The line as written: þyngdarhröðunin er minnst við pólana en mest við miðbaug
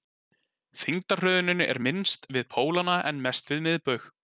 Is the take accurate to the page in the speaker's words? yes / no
yes